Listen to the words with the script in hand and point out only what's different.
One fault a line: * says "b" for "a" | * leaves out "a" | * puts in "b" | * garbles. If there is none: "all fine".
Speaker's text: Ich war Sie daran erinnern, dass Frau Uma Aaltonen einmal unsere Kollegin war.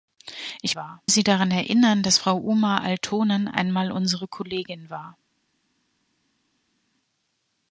all fine